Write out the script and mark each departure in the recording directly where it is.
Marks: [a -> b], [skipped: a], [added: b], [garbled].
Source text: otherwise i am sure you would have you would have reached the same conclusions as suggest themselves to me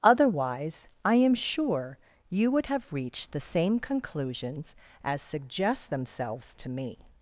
otherwise i am sure you would have [skipped: you would have] reached the same conclusions as suggest themselves to me